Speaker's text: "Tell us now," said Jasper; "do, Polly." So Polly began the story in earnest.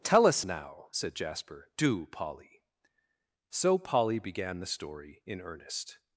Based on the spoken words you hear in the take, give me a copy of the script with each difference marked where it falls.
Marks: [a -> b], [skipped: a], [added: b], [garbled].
"Tell us now," said Jasper; "do, Polly." So Polly began the story in earnest.